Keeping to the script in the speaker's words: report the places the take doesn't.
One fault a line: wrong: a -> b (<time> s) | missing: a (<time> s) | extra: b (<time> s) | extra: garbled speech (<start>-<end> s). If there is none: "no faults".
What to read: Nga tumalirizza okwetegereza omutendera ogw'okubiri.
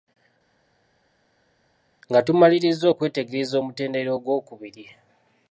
no faults